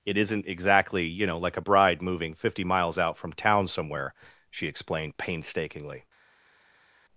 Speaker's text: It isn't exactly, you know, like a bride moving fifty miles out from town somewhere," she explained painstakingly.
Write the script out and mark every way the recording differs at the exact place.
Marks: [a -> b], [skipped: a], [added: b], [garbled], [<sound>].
It isn't exactly, you know, like a bride moving fifty miles out from town somewhere," she explained painstakingly.